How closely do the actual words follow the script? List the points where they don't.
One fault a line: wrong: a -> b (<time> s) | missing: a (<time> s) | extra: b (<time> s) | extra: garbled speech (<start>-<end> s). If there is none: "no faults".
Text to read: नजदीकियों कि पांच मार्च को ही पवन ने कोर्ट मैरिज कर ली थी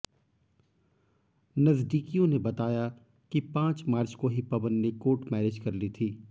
extra: ने बताया (2.3 s)